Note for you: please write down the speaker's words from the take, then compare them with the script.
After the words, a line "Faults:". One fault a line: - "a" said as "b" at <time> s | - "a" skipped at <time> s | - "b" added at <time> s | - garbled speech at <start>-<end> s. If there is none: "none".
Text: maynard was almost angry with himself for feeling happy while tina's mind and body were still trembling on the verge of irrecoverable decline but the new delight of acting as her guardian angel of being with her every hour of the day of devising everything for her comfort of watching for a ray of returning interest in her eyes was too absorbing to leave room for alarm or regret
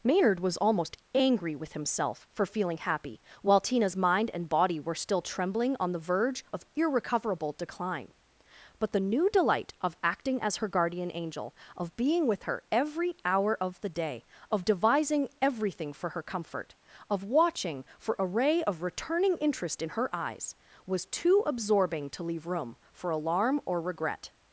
maynard was almost angry with himself for feeling happy while tina's mind and body were still trembling on the verge of irrecoverable decline but the new delight of acting as her guardian angel of being with her every hour of the day of devising everything for her comfort of watching for a ray of returning interest in her eyes was too absorbing to leave room for alarm or regret
Faults:
none